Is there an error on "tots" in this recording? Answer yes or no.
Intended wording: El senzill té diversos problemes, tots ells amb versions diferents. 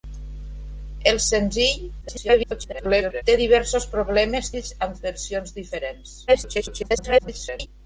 yes